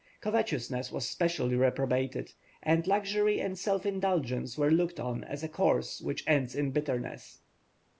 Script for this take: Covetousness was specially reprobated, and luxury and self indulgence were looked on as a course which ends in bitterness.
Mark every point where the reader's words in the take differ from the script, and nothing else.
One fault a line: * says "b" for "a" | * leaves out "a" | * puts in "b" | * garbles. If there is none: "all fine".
all fine